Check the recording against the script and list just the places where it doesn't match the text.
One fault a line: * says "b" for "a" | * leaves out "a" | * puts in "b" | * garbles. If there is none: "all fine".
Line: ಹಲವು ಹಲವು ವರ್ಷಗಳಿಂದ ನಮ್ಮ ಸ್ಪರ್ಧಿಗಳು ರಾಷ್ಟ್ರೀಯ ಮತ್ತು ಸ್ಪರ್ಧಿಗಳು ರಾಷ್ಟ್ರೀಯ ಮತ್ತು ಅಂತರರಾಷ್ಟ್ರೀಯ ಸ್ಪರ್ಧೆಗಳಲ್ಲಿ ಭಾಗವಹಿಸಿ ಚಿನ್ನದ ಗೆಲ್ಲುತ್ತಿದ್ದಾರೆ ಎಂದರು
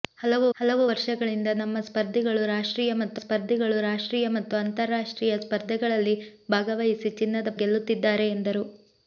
all fine